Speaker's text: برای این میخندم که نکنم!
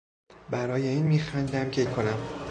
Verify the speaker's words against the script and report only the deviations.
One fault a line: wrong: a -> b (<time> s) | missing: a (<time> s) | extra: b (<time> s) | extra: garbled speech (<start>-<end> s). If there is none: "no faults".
no faults